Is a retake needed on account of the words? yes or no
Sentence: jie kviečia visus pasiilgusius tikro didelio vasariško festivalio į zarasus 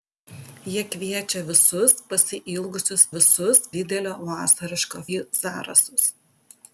yes